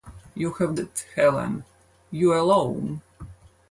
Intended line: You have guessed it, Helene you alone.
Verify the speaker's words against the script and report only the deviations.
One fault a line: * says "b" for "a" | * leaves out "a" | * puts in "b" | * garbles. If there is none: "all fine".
* leaves out "guessed"